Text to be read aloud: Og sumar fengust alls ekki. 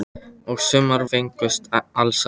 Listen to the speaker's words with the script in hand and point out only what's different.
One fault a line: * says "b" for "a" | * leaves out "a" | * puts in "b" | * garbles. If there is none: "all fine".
all fine